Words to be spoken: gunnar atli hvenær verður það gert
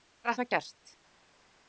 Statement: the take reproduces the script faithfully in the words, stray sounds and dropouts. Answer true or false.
false